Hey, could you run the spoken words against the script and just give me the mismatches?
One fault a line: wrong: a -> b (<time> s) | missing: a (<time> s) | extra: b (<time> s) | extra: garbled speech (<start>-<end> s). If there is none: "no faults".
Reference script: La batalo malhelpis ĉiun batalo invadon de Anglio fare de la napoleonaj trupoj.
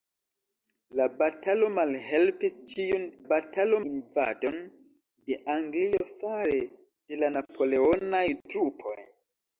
no faults